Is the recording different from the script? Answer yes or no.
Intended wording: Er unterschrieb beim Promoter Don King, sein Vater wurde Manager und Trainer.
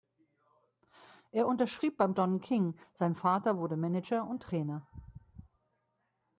yes